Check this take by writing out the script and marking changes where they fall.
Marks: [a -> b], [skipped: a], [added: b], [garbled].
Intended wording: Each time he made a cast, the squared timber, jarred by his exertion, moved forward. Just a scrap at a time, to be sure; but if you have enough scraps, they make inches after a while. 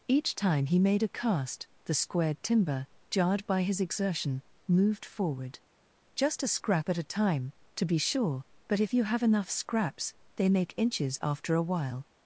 Each time he made a cast, the squared timber, jarred by his exertion, moved forward. Just a scrap at a time, to be sure; but if you have enough scraps, they make inches after a while.